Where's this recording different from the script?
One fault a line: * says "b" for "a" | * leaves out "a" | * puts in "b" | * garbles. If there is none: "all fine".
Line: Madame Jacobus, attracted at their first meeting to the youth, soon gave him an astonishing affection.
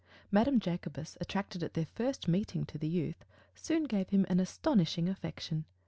all fine